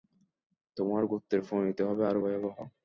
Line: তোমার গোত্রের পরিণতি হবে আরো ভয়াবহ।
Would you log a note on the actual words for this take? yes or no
no